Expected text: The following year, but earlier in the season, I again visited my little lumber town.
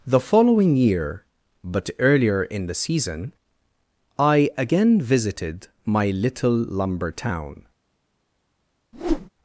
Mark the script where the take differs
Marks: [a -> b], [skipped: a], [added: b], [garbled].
The following year, but earlier in the season, I again visited my little lumber town.